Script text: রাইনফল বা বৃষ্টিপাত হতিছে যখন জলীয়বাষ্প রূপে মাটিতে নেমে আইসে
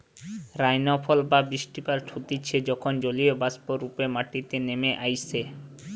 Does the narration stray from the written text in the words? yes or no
no